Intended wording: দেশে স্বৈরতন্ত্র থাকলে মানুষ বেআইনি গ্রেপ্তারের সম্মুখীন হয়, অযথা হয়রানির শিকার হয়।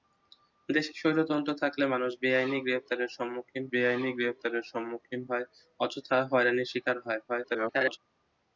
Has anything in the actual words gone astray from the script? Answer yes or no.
yes